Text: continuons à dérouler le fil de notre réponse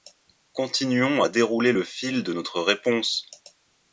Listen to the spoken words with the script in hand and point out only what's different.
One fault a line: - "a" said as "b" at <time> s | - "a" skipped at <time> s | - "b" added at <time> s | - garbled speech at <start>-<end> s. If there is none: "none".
none